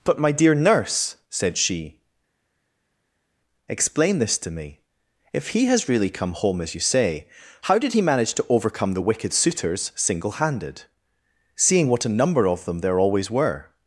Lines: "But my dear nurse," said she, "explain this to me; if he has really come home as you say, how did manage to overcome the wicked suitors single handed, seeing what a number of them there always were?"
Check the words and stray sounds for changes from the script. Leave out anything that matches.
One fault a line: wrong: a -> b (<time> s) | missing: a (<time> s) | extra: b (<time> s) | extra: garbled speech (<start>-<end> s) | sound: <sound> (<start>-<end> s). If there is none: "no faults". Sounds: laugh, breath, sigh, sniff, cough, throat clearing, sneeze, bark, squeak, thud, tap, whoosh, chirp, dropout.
extra: he (7.9 s)